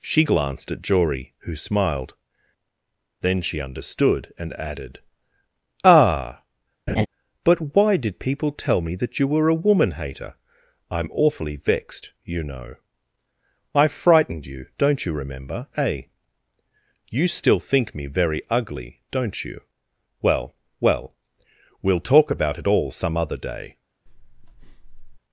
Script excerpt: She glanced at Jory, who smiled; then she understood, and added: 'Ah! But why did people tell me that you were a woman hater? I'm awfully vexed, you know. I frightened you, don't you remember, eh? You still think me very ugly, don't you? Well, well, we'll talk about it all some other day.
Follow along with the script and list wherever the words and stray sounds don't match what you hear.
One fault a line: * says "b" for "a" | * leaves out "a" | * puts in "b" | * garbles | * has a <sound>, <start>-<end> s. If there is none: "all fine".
* has a laugh, 6.9-7.1 s
* has a breath, 24.1-25.2 s